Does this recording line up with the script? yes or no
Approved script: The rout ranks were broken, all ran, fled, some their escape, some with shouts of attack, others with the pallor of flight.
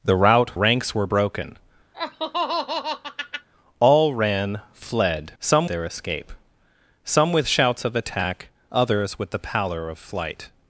yes